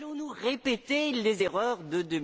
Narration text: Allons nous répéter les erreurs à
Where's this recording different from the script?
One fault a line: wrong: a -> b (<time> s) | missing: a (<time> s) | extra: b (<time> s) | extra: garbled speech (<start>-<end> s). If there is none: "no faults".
wrong: à -> de (1.8 s)